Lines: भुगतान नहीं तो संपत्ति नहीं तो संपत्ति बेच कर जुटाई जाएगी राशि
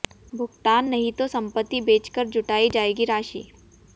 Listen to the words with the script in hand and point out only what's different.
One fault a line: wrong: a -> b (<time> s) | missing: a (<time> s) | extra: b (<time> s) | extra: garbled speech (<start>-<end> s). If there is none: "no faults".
missing: नहीं तो संपत्ति (1.8 s)